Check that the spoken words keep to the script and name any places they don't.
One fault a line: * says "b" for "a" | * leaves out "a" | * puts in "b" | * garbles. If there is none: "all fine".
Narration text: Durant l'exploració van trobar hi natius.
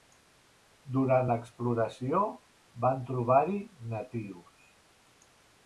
all fine